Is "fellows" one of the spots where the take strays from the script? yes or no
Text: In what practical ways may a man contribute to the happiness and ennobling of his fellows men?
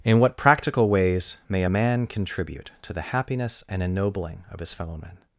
yes